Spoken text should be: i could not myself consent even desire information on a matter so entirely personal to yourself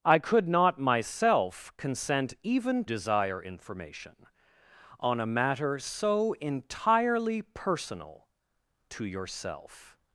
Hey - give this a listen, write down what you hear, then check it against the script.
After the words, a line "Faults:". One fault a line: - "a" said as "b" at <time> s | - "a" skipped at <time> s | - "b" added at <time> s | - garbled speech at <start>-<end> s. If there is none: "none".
i could not myself consent even desire information on a matter so entirely personal to yourself
Faults:
none